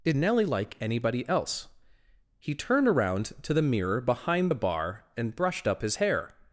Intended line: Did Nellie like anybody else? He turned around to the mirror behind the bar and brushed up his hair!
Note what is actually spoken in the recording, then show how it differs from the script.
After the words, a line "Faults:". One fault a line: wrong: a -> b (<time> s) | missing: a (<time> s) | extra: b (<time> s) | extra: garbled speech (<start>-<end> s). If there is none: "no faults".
Did Nellie like anybody else? He turned around to the mirror behind the bar and brushed up his hair!
Faults:
no faults